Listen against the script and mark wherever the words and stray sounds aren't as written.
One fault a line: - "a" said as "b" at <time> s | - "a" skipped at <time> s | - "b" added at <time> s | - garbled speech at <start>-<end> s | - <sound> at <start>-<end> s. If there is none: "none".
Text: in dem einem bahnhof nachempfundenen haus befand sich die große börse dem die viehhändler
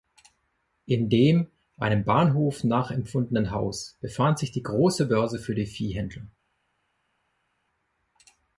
- "dem" said as "für" at 5.4 s